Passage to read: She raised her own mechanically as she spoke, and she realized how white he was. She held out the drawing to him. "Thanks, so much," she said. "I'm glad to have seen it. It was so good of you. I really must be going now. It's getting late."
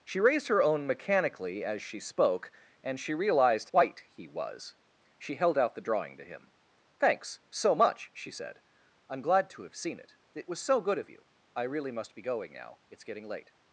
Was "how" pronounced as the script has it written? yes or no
no